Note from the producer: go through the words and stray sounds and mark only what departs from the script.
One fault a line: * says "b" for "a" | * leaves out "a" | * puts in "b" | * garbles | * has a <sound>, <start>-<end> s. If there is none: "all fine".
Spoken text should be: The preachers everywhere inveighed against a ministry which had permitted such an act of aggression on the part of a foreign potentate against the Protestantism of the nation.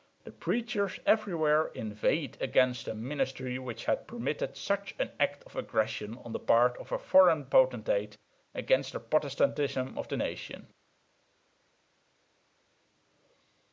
all fine